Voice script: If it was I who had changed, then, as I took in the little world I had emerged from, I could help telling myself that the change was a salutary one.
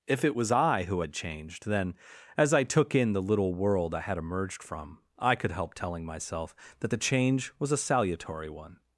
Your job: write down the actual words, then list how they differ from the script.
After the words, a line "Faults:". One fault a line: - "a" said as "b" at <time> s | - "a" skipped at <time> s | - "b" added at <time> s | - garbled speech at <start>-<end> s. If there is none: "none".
If it was I who had changed, then, as I took in the little world I had emerged from, I could help telling myself that the change was a salutary one.
Faults:
none